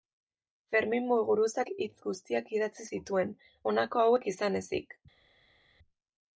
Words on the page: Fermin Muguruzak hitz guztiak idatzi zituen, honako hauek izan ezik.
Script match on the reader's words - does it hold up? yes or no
yes